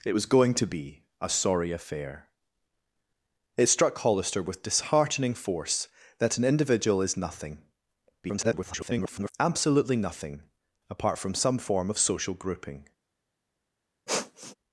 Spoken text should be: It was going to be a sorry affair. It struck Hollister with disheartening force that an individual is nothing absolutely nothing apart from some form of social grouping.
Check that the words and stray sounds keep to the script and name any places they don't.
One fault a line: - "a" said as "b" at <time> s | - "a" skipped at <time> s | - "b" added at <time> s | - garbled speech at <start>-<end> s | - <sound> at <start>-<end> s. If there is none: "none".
- garbled speech at 8.2-9.3 s
- sniff at 14.1-14.6 s